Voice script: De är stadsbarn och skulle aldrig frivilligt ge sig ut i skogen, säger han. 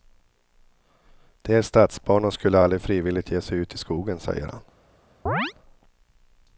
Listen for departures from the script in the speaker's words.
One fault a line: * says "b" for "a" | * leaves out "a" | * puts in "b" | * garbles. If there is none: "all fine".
all fine